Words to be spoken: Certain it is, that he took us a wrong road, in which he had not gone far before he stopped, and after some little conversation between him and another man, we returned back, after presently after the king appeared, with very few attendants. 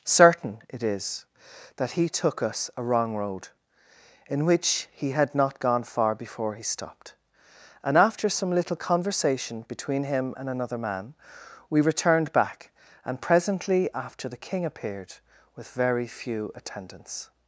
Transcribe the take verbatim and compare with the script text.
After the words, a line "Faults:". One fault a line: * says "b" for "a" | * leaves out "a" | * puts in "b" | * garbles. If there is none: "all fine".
Certain it is, that he took us a wrong road, in which he had not gone far before he stopped, and after some little conversation between him and another man, we returned back, and presently after the king appeared, with very few attendants.
Faults:
* says "and" for "after"